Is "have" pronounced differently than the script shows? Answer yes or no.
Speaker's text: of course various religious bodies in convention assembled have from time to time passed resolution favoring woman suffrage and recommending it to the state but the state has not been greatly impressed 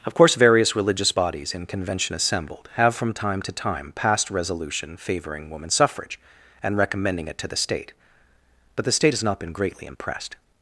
no